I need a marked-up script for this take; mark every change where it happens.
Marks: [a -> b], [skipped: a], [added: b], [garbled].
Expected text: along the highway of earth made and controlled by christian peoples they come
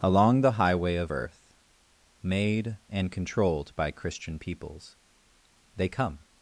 along the highway of earth made and controlled by christian peoples they come